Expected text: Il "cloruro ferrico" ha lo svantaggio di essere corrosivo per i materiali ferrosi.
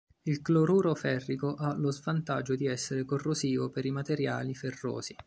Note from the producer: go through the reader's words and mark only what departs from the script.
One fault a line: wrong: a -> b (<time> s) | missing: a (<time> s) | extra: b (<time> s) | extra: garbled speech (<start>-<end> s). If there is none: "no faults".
no faults